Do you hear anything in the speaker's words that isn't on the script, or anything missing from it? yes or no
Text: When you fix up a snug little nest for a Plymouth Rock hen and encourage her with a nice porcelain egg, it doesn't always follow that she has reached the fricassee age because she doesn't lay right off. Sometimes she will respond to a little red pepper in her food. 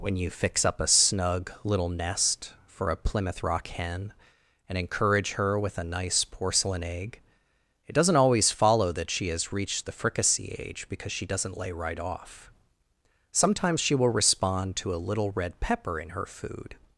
no